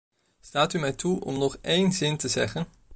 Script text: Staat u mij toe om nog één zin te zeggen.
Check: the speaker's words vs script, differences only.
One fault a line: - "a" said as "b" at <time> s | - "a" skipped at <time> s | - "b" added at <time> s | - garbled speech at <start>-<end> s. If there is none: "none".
none